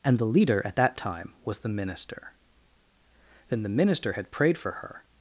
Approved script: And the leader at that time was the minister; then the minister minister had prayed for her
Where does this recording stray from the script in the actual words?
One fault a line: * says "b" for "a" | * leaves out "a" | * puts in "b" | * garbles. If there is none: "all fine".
* leaves out "minister"